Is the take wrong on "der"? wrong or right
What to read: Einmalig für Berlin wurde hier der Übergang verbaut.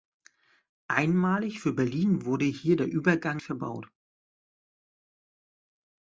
right